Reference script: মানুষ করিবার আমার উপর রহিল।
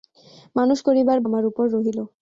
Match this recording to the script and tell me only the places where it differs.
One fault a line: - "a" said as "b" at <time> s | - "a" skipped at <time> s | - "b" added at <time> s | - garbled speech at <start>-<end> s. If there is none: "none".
none